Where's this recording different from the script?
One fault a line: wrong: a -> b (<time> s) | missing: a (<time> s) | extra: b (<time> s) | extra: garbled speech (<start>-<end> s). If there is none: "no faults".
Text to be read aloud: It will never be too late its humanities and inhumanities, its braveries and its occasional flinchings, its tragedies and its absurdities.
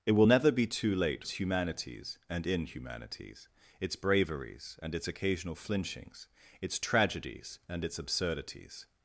no faults